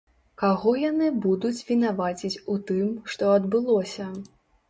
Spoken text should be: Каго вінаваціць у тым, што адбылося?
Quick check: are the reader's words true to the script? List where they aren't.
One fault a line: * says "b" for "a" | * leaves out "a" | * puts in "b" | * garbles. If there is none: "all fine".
* puts in "яны будуць"